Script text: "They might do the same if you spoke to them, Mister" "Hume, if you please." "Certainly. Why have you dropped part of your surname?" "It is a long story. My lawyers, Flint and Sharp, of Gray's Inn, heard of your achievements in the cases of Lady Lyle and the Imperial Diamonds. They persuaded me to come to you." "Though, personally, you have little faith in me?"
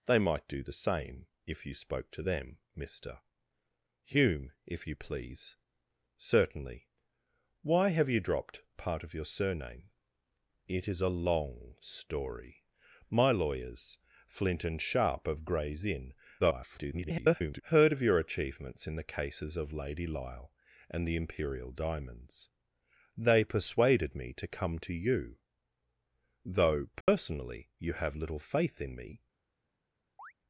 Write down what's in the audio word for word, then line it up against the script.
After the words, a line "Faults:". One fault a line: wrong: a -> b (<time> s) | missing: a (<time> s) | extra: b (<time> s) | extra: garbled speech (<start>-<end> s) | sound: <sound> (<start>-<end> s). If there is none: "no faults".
"They might do the same if you spoke to them, Mister" "Hume, if you please." "Certainly. Why have you dropped part of your surname?" "It is a long story. My lawyers, Flint and Sharp, of Gray's Inn, [garbled] heard of your achievements in the cases of Lady Lyle and the Imperial Diamonds. They persuaded me to come to you." "Though, personally, you have little faith in me?"
Faults:
extra: garbled speech (16.4-17.6 s)
sound: dropout (27.0-27.1 s)
sound: chirp (30.2-30.3 s)